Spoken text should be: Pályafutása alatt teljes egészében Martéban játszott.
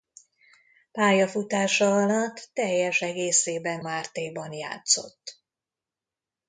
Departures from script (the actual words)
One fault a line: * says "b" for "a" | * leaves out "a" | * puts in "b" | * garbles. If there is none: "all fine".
all fine